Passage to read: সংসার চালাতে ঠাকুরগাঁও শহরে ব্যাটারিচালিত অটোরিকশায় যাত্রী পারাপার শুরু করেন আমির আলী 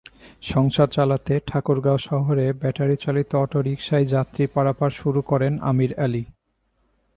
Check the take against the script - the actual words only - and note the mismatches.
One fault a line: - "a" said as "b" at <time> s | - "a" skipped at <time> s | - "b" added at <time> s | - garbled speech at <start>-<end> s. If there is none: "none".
none